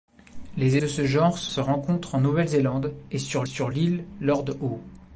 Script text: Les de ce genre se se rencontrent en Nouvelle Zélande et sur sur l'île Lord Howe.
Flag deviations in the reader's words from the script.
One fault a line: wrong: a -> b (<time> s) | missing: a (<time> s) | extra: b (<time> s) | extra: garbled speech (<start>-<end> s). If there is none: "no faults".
no faults